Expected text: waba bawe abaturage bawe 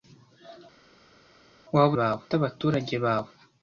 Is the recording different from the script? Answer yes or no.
no